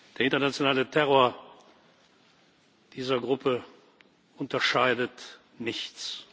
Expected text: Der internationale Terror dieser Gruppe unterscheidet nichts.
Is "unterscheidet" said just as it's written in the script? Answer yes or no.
yes